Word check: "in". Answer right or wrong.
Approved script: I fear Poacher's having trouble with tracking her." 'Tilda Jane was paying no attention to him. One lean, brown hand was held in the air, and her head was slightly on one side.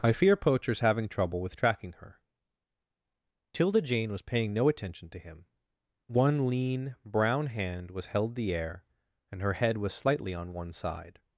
wrong